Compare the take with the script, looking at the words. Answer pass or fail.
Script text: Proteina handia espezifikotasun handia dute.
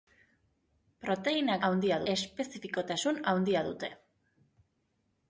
pass